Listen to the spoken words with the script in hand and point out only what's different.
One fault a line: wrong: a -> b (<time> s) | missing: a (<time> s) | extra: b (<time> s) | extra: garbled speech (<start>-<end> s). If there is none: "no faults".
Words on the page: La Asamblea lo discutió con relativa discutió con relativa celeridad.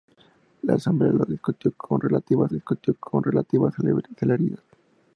no faults